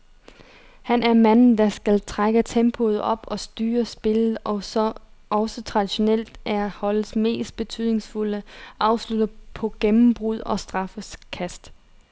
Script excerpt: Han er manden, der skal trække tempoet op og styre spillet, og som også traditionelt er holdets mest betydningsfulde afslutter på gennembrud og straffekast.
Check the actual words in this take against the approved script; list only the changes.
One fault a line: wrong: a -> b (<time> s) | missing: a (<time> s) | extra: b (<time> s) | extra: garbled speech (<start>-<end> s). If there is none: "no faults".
no faults